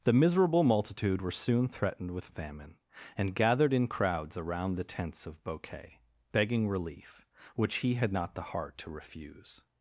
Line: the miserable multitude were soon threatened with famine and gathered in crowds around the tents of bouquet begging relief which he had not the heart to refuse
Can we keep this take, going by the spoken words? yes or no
yes